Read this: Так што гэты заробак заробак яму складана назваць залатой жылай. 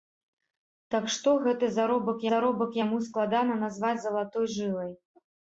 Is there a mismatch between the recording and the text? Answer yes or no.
no